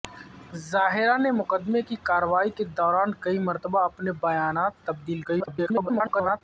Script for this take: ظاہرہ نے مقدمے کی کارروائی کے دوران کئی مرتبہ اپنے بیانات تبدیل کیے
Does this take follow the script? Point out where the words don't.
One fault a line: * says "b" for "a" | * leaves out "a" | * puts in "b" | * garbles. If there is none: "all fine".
* garbles